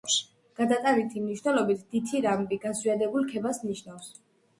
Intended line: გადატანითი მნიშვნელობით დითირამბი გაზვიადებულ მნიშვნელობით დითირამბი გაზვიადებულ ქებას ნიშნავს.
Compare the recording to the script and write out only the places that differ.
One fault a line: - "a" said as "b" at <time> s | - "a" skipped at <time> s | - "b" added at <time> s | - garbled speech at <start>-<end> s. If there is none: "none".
- "მნიშვნელობით დითირამბი გაზვიადებულ" skipped at 3.3 s